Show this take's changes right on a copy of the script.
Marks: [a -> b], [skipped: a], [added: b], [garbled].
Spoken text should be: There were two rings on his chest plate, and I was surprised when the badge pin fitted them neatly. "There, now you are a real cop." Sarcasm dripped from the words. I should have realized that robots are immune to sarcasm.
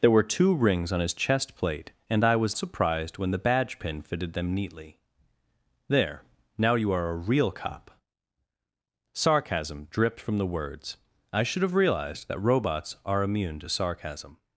There were two rings on his chest plate, and I was surprised when the badge pin fitted them neatly. "There, now you are a real cop." Sarcasm dripped from the words. I should have realized that robots are immune to sarcasm.